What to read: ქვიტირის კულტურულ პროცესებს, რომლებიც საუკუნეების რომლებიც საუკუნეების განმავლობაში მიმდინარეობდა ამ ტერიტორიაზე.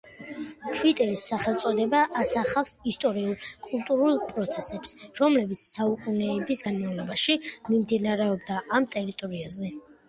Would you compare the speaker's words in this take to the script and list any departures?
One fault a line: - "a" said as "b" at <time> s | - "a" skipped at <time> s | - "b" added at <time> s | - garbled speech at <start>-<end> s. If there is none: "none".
- "სახელწოდება ასახავს ისტორიულ" added at 1.3 s
- "რომლებიც საუკუნეების" skipped at 6.7 s